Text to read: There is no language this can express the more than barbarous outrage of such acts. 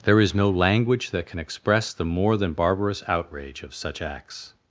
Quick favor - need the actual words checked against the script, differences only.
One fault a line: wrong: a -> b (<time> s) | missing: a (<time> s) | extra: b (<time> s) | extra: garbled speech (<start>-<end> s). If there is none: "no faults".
wrong: this -> that (1.1 s)